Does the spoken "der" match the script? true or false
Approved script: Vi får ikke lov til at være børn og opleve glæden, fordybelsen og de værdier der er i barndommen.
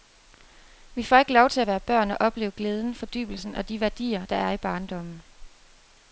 true